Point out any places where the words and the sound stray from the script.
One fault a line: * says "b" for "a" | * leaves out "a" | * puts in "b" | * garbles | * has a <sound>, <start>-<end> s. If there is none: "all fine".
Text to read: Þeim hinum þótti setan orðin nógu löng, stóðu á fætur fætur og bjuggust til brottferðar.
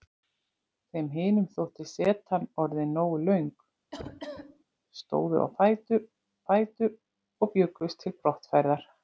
* has a cough, 3.9-4.6 s